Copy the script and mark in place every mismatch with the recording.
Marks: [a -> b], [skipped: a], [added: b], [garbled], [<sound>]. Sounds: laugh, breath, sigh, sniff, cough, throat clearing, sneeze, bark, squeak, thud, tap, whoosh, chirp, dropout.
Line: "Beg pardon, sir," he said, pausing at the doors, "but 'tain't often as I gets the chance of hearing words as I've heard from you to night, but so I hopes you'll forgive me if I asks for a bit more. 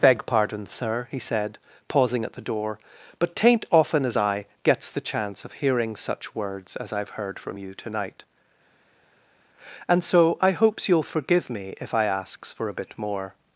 "Beg pardon, sir," he said, pausing at the [doors, -> door] "but 'tain't often as I gets the chance of hearing [added: such] words as I've heard from you to night, [but -> and] so I hopes you'll forgive me if I asks for a bit more.